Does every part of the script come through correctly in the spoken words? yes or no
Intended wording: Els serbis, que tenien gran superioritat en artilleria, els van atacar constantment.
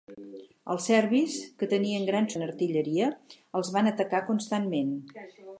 no